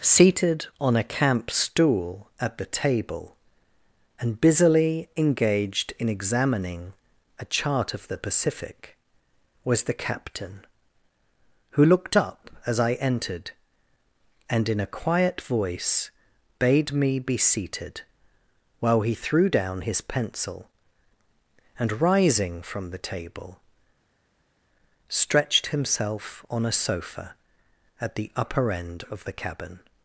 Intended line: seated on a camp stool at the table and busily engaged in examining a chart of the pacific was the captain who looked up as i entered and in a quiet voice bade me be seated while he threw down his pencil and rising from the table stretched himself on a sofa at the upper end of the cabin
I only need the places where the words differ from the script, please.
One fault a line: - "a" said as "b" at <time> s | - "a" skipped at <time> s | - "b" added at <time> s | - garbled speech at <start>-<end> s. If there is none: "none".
none